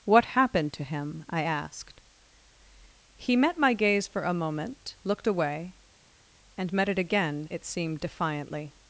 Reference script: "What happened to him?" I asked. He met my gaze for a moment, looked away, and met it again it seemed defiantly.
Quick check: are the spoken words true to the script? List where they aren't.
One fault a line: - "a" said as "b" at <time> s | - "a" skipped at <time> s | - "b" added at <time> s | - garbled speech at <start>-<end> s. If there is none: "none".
none